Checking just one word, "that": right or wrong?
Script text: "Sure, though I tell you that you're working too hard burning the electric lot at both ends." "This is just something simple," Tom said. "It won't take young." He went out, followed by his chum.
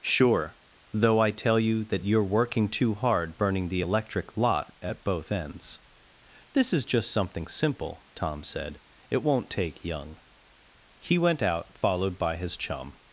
right